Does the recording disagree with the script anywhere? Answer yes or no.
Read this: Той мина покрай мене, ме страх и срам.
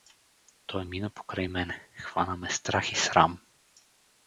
yes